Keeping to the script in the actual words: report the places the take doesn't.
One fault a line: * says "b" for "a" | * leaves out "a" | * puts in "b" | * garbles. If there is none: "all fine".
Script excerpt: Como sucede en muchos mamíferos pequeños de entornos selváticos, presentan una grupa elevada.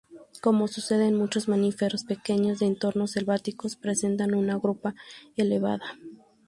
all fine